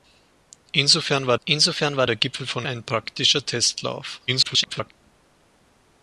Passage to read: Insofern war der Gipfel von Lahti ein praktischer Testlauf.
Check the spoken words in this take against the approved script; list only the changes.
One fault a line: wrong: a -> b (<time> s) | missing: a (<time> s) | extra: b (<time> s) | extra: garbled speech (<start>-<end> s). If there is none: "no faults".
extra: insofern war (1.4 s)
missing: Lahti (2.6 s)
extra: garbled speech (4.3-4.9 s)